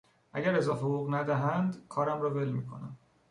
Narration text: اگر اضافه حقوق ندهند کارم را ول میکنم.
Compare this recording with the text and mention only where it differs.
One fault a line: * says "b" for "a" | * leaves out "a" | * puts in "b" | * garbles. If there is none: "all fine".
all fine